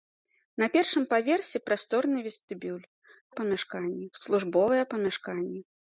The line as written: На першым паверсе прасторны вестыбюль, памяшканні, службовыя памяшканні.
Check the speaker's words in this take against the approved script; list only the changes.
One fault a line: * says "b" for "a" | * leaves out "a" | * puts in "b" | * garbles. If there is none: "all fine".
all fine